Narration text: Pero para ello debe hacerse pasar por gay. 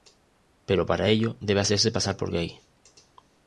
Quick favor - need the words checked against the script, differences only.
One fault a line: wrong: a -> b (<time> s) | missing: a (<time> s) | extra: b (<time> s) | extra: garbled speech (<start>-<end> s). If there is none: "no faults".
no faults